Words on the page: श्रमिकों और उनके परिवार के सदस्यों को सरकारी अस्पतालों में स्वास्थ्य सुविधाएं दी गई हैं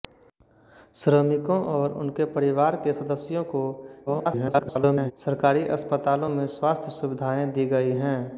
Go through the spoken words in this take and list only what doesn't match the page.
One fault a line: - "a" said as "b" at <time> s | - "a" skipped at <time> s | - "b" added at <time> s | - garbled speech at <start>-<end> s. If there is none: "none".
- garbled speech at 4.1-5.1 s